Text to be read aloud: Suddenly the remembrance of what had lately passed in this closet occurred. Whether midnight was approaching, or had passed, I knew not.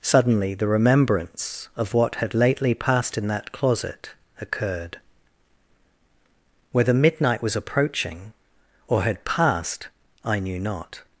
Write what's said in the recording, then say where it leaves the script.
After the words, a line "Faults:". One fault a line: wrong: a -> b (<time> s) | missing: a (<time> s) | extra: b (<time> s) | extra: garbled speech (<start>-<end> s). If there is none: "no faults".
Suddenly the remembrance of what had lately passed in that closet occurred. Whether midnight was approaching, or had passed, I knew not.
Faults:
wrong: this -> that (3.3 s)